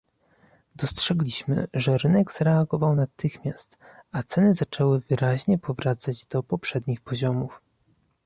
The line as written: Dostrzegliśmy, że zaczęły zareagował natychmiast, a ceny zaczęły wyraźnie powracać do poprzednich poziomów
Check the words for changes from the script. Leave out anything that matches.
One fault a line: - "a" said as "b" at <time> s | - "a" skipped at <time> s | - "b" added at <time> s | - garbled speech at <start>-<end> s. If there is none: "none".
- "zaczęły" said as "rynek" at 2.0 s